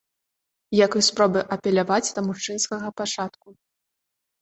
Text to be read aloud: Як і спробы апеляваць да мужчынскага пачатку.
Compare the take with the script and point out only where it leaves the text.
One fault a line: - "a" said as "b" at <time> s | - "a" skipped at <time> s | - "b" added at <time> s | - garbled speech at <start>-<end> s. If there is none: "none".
none